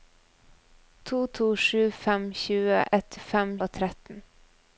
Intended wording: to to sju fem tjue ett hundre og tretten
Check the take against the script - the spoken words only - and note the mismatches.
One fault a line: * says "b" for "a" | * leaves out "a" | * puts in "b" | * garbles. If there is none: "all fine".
* says "fem" for "hundre"